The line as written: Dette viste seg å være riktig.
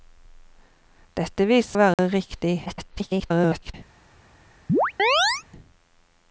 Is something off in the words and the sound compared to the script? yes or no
yes